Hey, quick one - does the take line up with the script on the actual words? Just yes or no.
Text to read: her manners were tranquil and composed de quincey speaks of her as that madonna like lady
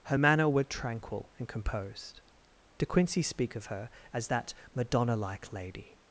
no